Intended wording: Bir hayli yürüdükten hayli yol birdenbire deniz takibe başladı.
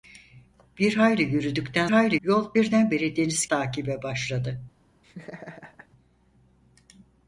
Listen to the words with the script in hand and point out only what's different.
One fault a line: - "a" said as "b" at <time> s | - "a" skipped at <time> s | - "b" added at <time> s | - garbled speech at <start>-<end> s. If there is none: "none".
none